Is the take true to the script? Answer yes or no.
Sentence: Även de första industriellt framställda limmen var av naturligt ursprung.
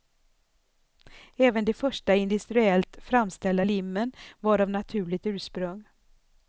yes